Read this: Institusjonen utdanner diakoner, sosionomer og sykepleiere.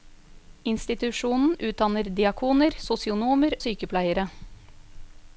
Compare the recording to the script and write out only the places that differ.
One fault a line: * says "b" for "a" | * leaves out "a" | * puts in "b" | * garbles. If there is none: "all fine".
* leaves out "og"